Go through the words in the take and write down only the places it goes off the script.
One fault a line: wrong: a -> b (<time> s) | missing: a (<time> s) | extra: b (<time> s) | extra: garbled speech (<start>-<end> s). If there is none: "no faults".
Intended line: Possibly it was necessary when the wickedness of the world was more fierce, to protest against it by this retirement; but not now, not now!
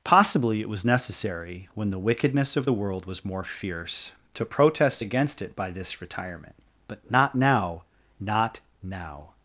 no faults